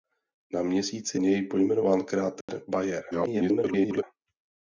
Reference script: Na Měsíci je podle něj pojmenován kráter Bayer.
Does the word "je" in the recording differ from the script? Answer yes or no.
yes